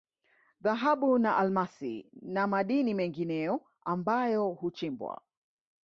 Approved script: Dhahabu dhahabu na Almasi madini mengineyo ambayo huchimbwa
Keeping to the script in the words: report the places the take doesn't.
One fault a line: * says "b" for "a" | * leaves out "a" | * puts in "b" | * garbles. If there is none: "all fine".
* leaves out "dhahabu"
* puts in "na"